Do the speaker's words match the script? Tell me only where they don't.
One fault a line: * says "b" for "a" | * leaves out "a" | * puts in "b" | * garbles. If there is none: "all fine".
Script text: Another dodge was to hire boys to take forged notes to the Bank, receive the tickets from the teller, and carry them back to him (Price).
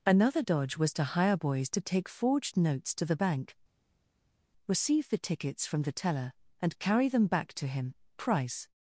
all fine